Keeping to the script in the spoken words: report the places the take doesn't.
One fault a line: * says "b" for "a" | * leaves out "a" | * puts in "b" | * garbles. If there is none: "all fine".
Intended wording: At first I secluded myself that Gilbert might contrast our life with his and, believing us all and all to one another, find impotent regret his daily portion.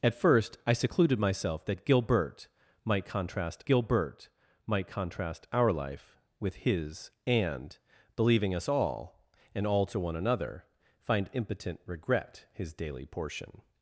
* puts in "Gilbert might contrast"